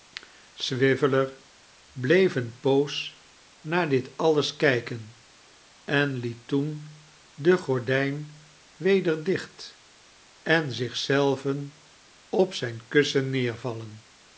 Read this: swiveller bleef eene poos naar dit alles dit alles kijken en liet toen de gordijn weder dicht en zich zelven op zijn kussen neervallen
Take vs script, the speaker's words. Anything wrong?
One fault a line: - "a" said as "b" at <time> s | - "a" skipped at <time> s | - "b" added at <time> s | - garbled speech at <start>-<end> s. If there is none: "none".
- "dit alles" skipped at 4.5 s